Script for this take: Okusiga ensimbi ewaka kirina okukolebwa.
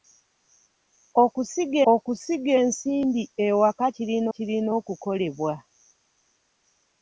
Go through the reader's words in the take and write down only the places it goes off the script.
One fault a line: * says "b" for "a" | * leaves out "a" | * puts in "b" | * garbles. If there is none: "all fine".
* puts in "okusiga"
* puts in "kirina"